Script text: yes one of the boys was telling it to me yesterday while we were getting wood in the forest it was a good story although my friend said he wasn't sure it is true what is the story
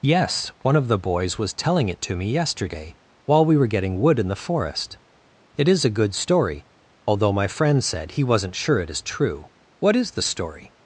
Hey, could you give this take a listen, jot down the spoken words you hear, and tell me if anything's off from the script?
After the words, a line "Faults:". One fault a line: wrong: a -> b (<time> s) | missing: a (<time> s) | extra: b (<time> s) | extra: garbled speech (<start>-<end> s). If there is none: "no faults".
yes one of the boys was telling it to me yesterday while we were getting wood in the forest it is a good story although my friend said he wasn't sure it is true what is the story
Faults:
wrong: was -> is (5.7 s)